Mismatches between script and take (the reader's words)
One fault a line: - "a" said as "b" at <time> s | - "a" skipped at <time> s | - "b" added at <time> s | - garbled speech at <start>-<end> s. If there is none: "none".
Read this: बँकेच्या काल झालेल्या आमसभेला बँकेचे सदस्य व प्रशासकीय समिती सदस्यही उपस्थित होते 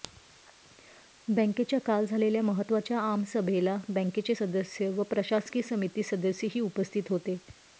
- "महत्त्वाच्या" added at 2.4 s